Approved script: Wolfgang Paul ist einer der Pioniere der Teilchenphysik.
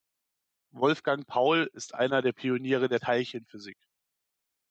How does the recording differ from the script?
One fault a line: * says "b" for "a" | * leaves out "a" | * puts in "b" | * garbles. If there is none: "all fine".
all fine